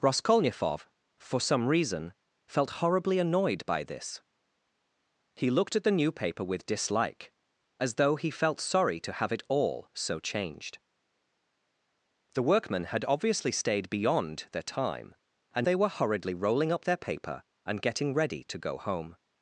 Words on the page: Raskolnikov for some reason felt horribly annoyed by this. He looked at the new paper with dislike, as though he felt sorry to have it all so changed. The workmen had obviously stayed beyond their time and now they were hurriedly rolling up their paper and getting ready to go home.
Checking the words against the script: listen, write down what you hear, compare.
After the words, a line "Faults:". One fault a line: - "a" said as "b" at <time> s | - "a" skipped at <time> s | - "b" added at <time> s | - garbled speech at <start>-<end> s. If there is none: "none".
Raskolnikov for some reason felt horribly annoyed by this. He looked at the new paper with dislike, as though he felt sorry to have it all so changed. The workmen had obviously stayed beyond their time and they were hurriedly rolling up their paper and getting ready to go home.
Faults:
- "now" skipped at 15.7 s